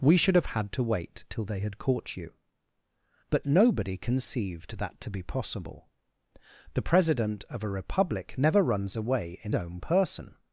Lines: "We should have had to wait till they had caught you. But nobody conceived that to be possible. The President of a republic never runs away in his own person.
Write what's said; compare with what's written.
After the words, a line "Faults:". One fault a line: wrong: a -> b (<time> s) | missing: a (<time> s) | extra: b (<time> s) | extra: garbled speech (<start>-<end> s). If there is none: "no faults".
"We should have had to wait till they had caught you. But nobody conceived that to be possible. The President of a republic never runs away in own person.
Faults:
missing: his (9.5 s)